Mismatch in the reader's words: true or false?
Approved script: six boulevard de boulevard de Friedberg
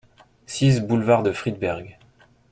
true